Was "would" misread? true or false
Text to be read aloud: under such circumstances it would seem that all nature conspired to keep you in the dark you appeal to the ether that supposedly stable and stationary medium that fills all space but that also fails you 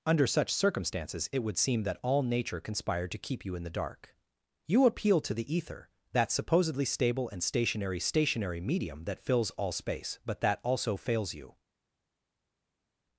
false